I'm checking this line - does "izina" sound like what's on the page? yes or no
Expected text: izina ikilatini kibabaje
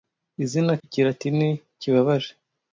yes